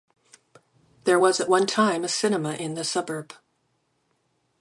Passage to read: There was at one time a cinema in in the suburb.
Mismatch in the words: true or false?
true